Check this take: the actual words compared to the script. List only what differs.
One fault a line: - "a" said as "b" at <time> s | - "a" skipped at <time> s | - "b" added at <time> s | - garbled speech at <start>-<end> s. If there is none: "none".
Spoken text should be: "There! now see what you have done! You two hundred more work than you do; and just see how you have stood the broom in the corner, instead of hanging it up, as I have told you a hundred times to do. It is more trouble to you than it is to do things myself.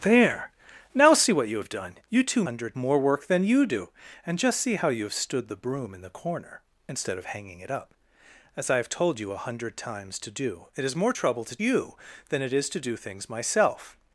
none